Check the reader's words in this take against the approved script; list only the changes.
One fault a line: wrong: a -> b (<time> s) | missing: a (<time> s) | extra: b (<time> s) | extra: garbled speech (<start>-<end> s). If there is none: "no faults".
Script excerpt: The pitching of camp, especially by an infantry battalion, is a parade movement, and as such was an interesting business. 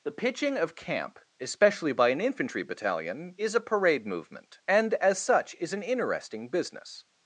wrong: was -> is (5.6 s)